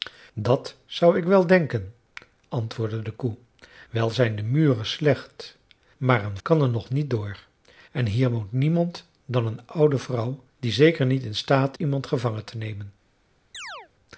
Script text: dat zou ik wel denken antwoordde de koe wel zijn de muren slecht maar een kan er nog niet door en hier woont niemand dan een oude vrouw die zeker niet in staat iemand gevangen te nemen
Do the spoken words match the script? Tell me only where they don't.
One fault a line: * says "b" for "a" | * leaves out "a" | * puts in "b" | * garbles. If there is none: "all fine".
all fine